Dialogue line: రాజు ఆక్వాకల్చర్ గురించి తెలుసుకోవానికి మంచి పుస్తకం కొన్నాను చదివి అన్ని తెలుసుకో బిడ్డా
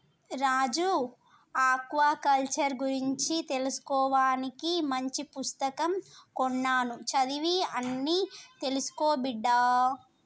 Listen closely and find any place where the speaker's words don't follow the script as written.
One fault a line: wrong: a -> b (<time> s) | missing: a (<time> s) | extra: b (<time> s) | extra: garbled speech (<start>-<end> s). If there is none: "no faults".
no faults